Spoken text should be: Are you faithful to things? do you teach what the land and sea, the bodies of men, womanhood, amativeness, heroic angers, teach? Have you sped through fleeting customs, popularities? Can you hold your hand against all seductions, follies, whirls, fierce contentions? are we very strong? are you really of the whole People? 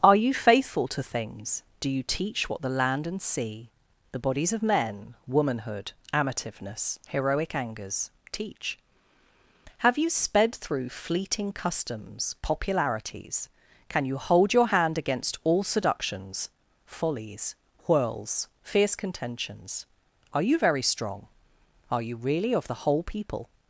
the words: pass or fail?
fail